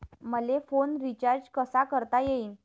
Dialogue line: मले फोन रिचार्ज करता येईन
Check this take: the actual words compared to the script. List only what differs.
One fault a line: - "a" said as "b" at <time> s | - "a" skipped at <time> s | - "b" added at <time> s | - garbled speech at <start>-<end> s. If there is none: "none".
- "कसा" added at 1.5 s